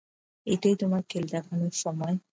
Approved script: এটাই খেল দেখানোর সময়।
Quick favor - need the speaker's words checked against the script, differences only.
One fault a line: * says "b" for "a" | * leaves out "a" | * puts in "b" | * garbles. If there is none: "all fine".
* puts in "তোমার"